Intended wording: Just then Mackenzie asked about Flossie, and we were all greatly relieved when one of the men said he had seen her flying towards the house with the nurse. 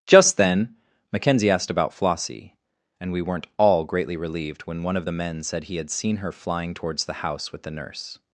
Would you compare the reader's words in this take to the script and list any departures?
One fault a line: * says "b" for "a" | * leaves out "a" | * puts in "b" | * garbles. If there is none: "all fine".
* says "weren't" for "were"